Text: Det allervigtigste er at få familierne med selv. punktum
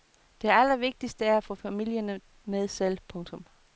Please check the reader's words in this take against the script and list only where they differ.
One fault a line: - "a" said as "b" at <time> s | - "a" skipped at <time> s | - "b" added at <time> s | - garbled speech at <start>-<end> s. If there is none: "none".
none